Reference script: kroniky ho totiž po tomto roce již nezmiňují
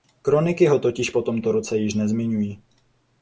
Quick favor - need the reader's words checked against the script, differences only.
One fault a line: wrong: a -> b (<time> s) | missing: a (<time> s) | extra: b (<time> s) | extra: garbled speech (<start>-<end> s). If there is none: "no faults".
no faults